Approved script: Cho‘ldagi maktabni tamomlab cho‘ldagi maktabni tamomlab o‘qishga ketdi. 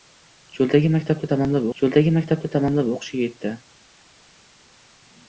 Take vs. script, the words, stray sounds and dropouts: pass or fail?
pass